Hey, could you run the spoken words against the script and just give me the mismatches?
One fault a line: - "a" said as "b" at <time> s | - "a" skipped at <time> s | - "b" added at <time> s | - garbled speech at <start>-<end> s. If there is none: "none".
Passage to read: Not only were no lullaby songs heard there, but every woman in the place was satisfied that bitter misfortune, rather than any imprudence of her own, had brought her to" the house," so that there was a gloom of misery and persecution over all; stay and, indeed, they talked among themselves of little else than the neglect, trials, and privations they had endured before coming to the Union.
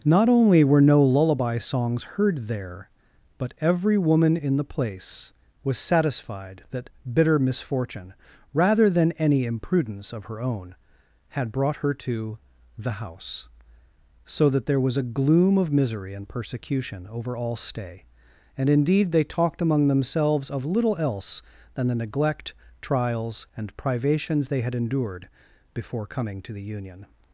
none